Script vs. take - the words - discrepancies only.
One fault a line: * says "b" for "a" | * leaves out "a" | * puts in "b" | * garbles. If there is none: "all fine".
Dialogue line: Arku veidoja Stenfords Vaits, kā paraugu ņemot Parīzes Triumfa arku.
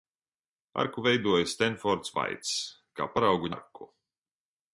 * leaves out "ņemot Parīzes Triumfa"